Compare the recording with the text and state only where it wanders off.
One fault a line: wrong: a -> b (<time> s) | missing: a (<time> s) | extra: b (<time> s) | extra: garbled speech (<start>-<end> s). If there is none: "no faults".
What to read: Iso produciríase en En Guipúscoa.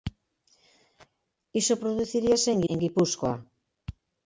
no faults